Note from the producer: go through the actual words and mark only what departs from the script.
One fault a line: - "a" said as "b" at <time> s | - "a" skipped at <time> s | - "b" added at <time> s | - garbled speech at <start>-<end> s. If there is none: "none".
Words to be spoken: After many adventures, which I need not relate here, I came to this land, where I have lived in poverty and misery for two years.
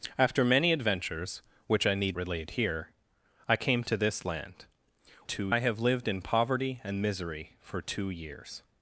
- "not" skipped at 2.2 s
- "where" said as "two" at 5.2 s